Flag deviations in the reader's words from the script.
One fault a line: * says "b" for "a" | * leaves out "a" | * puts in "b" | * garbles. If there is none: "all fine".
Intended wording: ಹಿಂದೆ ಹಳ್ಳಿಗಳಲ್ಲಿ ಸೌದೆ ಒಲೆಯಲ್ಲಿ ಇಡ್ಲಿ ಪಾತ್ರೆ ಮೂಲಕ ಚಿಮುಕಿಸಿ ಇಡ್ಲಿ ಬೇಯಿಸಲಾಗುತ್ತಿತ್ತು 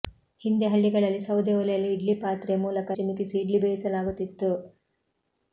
all fine